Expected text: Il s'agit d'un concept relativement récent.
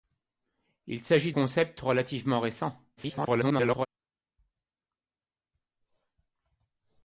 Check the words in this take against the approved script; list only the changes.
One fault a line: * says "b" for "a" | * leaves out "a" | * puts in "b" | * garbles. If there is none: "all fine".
* leaves out "d'un"
* garbles